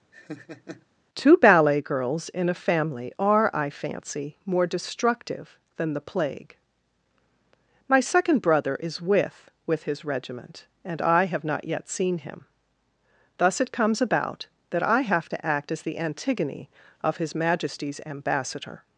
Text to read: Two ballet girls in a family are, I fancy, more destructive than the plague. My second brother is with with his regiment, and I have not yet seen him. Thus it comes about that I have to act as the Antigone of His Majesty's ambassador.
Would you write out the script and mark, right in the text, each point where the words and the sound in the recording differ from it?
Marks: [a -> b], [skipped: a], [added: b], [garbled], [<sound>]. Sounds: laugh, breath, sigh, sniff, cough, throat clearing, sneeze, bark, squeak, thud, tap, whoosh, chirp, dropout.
[laugh] Two ballet girls in a family are, I fancy, more destructive than the plague. My second brother is with with his regiment, and I have not yet seen him. Thus it comes about that I have to act as the Antigone of His Majesty's ambassador.